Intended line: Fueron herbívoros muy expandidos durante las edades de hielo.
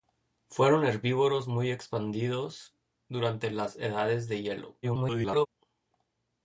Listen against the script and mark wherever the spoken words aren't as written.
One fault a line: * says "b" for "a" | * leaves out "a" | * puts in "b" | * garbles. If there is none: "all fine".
* garbles